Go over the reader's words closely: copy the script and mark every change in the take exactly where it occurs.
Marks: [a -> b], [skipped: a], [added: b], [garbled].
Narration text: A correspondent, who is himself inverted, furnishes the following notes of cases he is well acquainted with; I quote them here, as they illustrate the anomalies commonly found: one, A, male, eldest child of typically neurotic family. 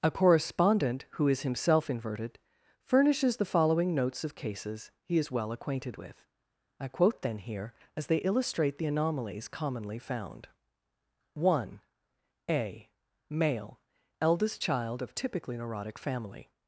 A correspondent, who is himself inverted, furnishes the following notes of cases he is well acquainted with; I quote [them -> then] here, as they illustrate the anomalies commonly found: one, A, male, eldest child of typically neurotic family.